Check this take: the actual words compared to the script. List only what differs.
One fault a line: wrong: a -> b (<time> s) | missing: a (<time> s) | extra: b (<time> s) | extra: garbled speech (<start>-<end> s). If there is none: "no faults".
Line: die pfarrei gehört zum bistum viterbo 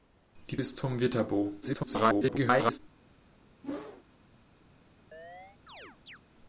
missing: pfarrei gehört zum (0.6 s)
extra: garbled speech (1.6-2.8 s)